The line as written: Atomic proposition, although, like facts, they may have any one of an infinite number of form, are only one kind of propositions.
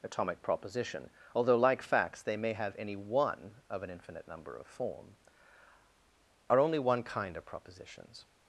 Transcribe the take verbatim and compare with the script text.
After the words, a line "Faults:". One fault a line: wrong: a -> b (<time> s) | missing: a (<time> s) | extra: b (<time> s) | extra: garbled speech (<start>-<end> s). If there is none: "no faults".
Atomic proposition, although, like facts, they may have any one of an infinite number of form, are only one kind of propositions.
Faults:
no faults